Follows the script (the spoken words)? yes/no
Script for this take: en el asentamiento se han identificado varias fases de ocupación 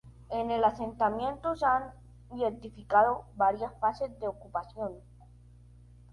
yes